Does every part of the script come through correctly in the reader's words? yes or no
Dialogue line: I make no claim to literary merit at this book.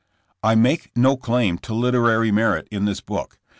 no